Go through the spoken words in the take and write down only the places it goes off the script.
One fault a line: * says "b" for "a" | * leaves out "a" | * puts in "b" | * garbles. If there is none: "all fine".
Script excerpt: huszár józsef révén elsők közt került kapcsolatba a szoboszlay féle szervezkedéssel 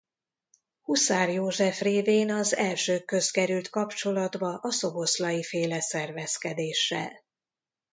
* puts in "az"